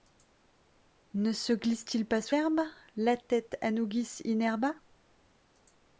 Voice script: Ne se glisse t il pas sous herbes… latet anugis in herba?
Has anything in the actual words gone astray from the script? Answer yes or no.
no